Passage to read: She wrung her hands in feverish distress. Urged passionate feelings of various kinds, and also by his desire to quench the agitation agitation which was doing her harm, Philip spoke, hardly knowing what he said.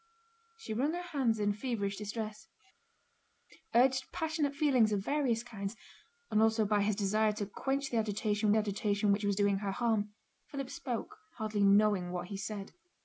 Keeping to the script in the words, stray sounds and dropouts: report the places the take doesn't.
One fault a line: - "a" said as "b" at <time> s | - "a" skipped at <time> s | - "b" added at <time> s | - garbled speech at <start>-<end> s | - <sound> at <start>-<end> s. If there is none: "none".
none